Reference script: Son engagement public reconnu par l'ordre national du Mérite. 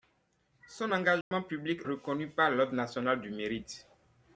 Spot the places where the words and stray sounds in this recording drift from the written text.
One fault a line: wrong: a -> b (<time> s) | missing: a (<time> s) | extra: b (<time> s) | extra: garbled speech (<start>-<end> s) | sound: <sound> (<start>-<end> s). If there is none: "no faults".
sound: dropout (1.2-1.3 s)